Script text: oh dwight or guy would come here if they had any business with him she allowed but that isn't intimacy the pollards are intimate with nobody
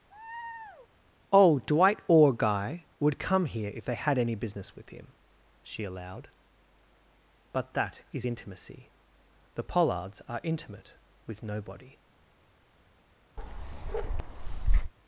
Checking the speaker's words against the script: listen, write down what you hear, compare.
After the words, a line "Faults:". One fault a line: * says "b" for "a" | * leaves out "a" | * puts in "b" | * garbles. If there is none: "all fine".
oh dwight or guy would come here if they had any business with him she allowed but that is intimacy the pollards are intimate with nobody
Faults:
* says "is" for "isn't"